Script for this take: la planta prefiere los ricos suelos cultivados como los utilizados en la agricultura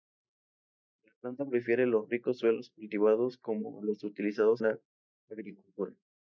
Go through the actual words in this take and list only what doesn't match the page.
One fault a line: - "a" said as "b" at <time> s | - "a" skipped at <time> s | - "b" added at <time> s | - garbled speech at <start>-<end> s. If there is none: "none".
- "en" skipped at 4.6 s